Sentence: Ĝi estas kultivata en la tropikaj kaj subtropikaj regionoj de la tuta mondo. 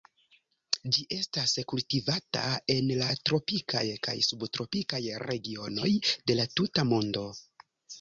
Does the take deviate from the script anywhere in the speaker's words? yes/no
no